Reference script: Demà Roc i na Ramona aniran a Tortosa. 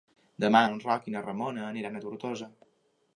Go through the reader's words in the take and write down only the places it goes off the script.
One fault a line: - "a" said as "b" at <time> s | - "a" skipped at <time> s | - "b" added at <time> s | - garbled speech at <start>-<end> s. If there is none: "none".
- "en" added at 0.7 s